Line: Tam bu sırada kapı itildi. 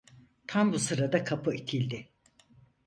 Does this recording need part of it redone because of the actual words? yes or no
no